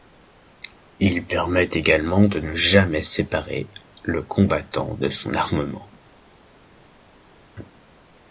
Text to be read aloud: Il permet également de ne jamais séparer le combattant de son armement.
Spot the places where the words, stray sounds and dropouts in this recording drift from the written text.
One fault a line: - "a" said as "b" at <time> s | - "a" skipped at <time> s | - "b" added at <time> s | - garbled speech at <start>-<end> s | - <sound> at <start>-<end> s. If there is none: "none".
none